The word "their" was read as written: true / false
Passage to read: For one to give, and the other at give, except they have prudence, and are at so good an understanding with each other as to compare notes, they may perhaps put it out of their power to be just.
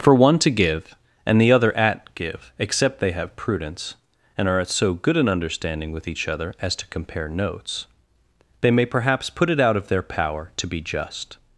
true